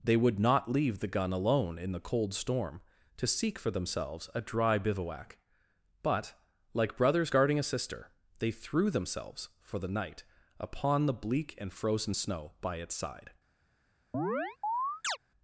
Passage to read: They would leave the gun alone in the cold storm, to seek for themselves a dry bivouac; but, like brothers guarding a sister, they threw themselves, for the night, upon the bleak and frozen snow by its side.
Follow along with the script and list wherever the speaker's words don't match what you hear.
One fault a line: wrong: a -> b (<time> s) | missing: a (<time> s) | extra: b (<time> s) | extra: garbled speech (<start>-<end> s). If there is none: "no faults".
extra: not (0.4 s)